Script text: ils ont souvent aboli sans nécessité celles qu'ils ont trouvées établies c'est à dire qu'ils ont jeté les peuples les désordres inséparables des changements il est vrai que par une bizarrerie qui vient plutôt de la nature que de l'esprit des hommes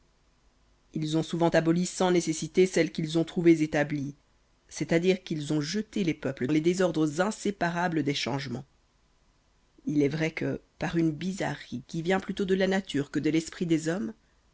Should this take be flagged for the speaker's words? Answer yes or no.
no